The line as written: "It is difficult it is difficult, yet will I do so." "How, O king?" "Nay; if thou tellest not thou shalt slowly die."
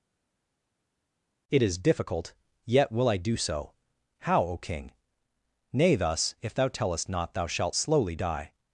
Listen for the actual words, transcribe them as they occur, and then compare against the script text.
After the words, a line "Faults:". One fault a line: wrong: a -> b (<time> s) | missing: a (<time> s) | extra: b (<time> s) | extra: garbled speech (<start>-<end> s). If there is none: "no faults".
"It is difficult, yet will I do so." "How, O king?" "Nay, thus; if thou tellest not thou shalt slowly die."
Faults:
missing: it is difficult (2.3 s)
extra: thus (5.9 s)